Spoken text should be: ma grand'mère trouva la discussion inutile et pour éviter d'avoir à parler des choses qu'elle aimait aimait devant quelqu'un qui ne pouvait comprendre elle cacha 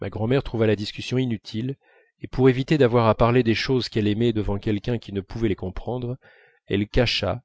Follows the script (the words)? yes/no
no